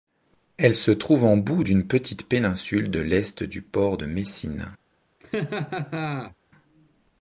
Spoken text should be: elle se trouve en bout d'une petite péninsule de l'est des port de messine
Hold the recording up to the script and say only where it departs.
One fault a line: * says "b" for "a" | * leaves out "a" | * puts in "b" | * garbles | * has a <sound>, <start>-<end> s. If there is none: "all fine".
* says "du" for "des"
* has a laugh, 5.2-6.3 s